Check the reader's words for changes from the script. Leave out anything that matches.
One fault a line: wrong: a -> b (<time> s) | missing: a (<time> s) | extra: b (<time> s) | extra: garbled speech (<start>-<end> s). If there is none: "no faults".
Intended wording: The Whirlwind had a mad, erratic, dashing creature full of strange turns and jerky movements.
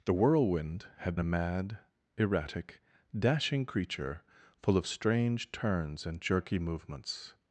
no faults